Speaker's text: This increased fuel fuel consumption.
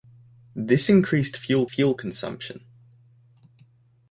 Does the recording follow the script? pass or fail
pass